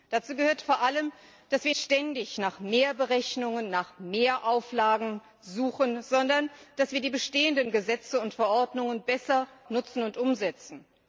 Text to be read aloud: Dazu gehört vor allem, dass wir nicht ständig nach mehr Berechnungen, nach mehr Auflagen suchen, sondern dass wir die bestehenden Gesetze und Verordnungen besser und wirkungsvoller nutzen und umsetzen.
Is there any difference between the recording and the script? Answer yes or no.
yes